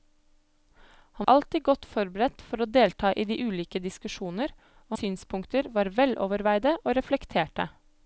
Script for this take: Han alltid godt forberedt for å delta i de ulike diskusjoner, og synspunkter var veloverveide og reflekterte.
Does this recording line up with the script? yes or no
yes